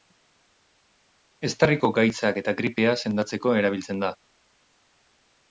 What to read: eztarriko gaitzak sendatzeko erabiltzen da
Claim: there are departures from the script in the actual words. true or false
true